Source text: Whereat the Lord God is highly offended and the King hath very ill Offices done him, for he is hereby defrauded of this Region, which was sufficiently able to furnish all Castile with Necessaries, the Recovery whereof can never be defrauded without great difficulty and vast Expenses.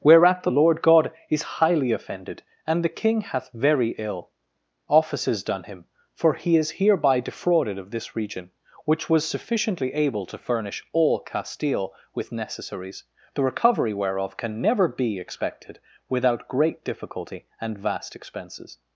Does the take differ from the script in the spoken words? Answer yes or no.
yes